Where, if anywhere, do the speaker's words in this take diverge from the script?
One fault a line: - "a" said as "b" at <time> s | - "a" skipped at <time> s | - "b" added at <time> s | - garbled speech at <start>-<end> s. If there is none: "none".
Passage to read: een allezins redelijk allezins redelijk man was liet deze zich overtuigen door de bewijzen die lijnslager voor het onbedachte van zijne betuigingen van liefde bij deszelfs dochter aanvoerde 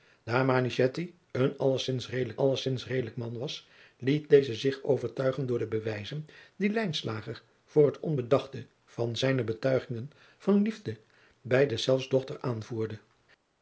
none